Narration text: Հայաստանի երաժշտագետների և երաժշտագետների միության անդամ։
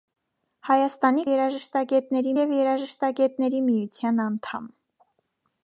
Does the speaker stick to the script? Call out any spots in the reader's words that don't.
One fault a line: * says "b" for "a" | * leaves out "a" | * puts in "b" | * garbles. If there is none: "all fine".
all fine